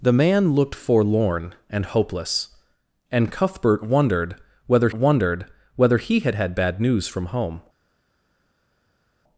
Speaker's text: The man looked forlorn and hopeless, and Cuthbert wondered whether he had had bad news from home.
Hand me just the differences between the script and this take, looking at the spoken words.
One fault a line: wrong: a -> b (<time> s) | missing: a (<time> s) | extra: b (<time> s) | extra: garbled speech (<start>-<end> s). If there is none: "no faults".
extra: wondered whether (4.9 s)